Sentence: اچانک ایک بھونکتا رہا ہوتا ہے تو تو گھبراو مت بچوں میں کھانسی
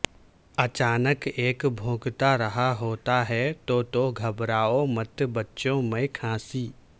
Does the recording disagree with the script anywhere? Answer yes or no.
no